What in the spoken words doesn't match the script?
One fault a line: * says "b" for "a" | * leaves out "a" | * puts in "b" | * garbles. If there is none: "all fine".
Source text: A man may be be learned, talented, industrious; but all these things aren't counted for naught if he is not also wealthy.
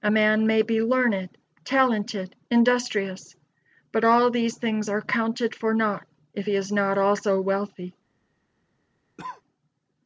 * leaves out "be"
* says "are" for "aren't"